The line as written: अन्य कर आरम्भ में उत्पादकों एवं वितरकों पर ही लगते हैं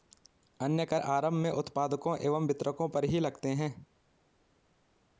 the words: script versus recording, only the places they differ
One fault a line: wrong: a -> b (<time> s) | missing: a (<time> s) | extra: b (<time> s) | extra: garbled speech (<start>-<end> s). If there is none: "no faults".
no faults